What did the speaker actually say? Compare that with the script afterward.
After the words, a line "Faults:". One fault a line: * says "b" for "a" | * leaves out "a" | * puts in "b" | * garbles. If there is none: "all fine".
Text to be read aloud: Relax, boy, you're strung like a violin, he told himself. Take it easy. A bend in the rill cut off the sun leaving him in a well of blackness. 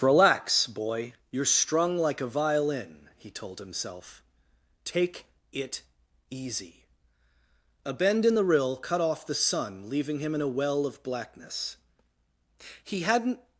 Relax, boy, you're strung like a violin, he told himself. Take it easy. A bend in the rill cut off the sun leaving him in a well of blackness. He hadn't
Faults:
* puts in "He hadn't"